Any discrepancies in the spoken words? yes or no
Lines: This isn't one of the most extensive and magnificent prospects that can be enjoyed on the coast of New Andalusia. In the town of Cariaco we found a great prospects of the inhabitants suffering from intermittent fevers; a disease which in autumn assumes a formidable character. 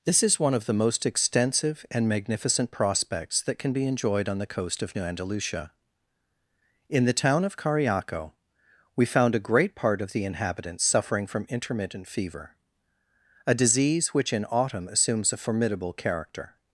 yes